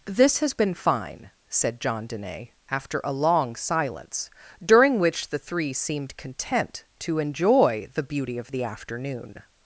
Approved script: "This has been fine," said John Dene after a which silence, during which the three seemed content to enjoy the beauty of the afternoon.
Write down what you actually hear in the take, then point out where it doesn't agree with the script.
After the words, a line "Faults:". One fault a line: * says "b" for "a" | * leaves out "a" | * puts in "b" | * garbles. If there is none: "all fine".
"This has been fine," said John Dene after a long silence, during which the three seemed content to enjoy the beauty of the afternoon.
Faults:
* says "long" for "which"